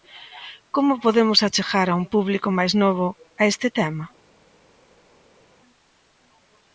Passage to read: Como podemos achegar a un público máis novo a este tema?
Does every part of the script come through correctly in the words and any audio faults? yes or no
yes